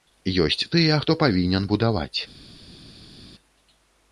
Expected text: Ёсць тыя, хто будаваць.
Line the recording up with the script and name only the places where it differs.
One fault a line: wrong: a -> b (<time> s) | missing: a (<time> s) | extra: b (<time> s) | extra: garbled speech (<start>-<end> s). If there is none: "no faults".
extra: павінен (1.2 s)